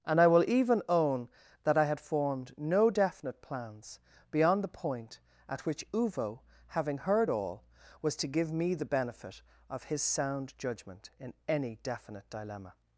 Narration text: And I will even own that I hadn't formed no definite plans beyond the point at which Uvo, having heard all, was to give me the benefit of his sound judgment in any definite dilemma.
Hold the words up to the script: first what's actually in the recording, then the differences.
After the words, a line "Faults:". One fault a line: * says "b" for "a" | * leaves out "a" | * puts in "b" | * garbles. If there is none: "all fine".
And I will even own that I had formed no definite plans beyond the point at which Uvo, having heard all, was to give me the benefit of his sound judgment in any definite dilemma.
Faults:
* says "had" for "hadn't"